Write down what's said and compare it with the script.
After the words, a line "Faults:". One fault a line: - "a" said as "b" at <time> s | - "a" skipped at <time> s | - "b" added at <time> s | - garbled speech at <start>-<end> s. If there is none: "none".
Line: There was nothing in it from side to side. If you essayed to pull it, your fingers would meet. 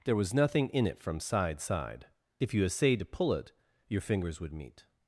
There was nothing in it from side side. If you essayed to pull it, your fingers would meet.
Faults:
- "to" skipped at 1.6 s